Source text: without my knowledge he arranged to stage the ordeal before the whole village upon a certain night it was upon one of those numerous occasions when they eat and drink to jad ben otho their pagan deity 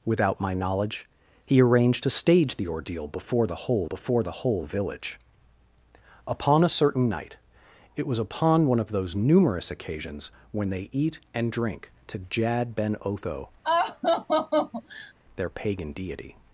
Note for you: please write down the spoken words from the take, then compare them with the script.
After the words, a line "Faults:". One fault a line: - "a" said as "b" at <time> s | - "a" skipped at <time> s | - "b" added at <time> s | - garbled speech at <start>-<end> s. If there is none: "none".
without my knowledge he arranged to stage the ordeal before the whole before the whole village upon a certain night it was upon one of those numerous occasions when they eat and drink to jad ben otho their pagan deity
Faults:
- "before the whole" added at 3.8 s